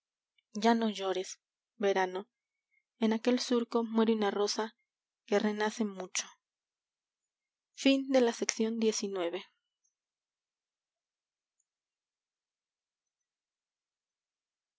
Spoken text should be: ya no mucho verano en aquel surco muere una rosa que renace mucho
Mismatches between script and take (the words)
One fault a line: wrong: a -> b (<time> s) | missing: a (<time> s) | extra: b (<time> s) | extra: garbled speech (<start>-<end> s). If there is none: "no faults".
wrong: mucho -> llores (0.9 s)